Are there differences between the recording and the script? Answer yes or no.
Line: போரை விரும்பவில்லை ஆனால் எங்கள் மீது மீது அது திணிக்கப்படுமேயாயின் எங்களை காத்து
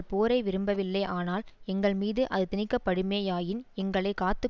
yes